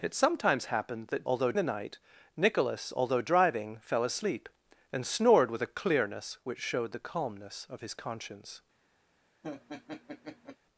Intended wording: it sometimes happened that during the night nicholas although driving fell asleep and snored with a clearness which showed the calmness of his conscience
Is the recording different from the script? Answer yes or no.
yes